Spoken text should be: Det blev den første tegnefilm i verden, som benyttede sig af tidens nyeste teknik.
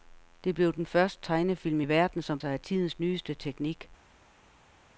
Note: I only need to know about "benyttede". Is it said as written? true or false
false